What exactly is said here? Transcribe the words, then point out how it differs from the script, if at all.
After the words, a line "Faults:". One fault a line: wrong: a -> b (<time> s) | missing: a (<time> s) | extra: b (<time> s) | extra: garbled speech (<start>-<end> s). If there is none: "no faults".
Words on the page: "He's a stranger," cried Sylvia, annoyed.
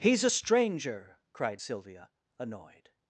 "He's a stranger," cried Sylvia, annoyed.
Faults:
no faults